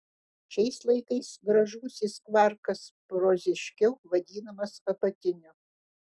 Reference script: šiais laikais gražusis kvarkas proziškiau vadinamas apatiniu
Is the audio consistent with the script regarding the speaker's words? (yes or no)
yes